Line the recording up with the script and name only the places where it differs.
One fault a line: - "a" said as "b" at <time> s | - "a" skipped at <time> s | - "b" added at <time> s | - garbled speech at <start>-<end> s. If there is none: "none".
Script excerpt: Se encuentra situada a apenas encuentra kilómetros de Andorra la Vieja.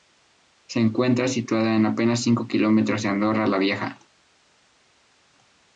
- "encuentra" said as "cinco" at 2.2 s